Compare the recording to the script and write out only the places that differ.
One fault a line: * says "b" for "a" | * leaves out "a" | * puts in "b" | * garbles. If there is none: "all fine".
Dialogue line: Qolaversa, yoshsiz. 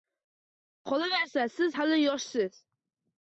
* puts in "siz hali"